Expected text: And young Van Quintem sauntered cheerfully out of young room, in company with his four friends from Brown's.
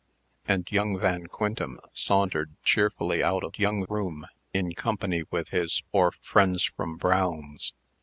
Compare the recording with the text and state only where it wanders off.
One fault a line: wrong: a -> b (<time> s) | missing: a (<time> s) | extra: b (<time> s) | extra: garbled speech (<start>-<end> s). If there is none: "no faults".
no faults